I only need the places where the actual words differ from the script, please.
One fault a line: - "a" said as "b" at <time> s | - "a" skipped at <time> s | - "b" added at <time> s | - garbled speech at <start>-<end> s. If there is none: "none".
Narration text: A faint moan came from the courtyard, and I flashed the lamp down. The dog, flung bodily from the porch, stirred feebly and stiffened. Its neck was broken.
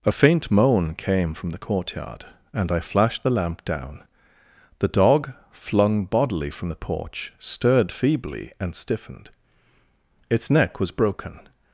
none